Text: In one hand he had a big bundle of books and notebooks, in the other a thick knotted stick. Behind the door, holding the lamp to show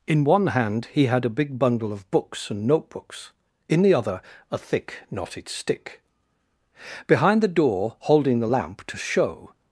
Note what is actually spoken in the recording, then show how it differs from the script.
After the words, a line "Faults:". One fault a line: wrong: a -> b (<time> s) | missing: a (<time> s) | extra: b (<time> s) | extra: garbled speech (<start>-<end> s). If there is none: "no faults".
In one hand he had a big bundle of books and notebooks, in the other a thick knotted stick. Behind the door, holding the lamp to show
Faults:
no faults